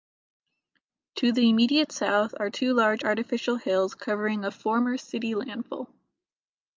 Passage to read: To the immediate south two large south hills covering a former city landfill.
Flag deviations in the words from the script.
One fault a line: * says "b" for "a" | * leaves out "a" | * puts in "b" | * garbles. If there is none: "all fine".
* puts in "are"
* says "artificial" for "south"